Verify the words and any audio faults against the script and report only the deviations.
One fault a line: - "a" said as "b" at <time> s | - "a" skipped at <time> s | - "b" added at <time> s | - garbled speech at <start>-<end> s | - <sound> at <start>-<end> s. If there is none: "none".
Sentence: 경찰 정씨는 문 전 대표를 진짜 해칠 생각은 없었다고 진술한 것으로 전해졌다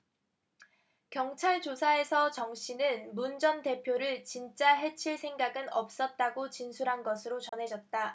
- "조사에서" added at 1.6 s
- dropout at 7.5-7.5 s